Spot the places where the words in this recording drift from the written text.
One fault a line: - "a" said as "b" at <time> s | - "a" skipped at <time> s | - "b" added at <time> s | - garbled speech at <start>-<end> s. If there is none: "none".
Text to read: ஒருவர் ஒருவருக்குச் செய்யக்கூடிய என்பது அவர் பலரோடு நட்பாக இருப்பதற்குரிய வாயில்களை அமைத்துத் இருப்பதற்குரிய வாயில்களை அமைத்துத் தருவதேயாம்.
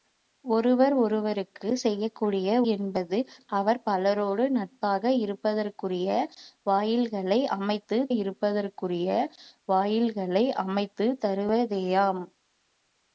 none